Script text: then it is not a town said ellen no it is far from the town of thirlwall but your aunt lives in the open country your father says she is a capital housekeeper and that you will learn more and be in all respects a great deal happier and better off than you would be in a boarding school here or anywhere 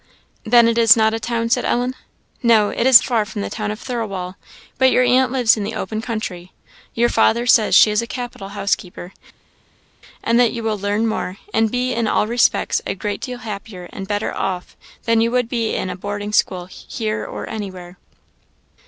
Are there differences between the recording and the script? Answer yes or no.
no